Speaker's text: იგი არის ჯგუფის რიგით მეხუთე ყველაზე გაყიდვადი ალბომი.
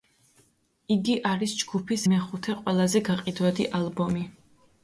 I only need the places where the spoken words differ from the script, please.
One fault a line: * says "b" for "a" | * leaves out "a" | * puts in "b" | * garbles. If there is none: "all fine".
* leaves out "რიგით"